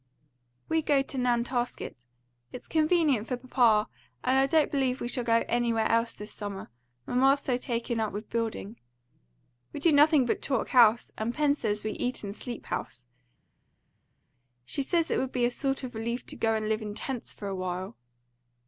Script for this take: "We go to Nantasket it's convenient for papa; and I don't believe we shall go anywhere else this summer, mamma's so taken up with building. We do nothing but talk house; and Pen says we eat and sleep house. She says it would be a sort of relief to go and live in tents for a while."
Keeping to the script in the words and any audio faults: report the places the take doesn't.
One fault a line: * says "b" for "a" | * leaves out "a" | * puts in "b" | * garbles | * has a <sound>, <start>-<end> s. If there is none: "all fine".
all fine